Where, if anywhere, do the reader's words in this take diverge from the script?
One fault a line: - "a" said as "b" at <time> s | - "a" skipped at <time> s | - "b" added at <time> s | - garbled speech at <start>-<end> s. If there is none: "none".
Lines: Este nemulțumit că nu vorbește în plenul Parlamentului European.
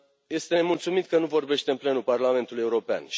none